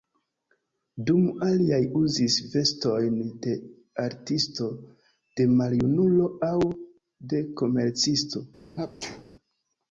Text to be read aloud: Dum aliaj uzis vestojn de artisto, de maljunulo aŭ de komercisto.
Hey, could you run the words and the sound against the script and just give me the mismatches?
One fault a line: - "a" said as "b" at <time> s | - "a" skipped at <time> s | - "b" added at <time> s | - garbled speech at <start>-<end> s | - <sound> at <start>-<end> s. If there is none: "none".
- sneeze at 8.8-9.2 s